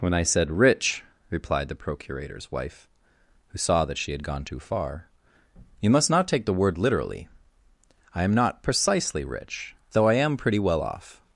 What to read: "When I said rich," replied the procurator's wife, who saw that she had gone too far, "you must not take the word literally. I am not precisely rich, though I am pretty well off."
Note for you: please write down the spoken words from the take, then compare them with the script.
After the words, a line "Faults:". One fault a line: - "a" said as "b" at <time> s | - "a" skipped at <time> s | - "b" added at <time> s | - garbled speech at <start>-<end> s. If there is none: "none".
"When I said rich," replied the procurator's wife, who saw that she had gone too far, "you must not take the word literally. I am not precisely rich, though I am pretty well off."
Faults:
none